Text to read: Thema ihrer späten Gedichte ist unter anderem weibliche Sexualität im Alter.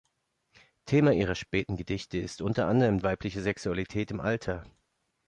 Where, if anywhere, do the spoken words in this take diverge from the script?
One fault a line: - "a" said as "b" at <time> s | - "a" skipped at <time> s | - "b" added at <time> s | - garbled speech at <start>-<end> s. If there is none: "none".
none